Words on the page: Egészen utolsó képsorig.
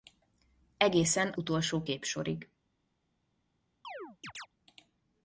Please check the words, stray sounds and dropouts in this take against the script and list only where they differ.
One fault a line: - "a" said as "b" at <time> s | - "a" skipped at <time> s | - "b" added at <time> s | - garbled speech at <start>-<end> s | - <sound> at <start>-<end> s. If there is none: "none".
- chirp at 3.8-4.5 s